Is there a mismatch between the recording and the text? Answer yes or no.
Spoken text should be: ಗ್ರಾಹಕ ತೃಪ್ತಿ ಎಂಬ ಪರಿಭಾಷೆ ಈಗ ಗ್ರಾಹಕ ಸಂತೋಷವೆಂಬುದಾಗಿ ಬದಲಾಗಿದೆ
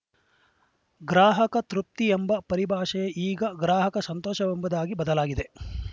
no